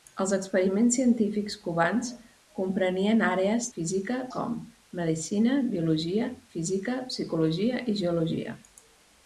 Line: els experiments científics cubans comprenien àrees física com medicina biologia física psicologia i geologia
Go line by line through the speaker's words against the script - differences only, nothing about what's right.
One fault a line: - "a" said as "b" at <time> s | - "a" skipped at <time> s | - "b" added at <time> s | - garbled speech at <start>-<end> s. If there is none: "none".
none